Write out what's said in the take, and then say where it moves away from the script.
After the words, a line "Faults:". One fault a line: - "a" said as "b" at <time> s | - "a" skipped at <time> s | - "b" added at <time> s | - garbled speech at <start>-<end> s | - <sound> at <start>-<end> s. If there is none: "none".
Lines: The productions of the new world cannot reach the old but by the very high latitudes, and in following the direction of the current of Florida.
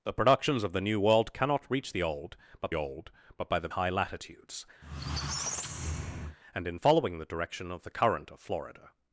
The productions of the new world cannot reach the old but old but by the high latitudes, and in following the direction of the current of Florida.
Faults:
- "old but" added at 2.7 s
- "very" skipped at 3.7 s
- squeak at 4.8-6.4 s